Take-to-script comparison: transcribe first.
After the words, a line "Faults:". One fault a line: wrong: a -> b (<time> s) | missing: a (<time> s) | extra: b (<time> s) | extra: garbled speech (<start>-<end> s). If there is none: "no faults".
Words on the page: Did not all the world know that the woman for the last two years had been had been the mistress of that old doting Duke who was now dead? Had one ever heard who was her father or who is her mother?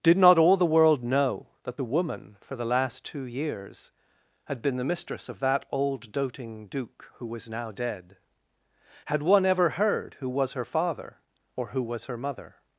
Did not all the world know that the woman for the last two years had been the mistress of that old doting Duke who was now dead? Had one ever heard who was her father or who was her mother?
Faults:
missing: had been (4.8 s)
wrong: is -> was (11.8 s)